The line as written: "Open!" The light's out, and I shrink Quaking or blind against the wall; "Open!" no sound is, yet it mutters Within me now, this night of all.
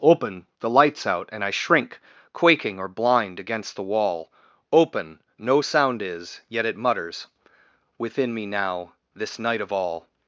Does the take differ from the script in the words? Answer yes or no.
no